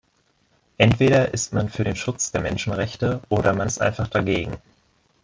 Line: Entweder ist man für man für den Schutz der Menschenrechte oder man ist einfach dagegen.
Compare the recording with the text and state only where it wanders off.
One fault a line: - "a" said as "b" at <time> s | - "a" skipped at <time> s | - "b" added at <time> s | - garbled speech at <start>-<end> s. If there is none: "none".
- "man für" skipped at 1.9 s